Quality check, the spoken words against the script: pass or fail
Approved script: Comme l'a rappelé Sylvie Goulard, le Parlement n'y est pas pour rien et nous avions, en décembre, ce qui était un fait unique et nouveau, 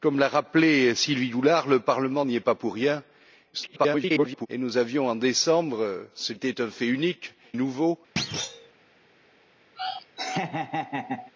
fail